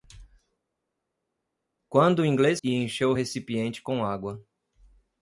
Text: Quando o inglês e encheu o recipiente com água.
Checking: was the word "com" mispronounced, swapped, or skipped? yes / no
no